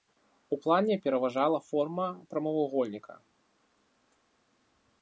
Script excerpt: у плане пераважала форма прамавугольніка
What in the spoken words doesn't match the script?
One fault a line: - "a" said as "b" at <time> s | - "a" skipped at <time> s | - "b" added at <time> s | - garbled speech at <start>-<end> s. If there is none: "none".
none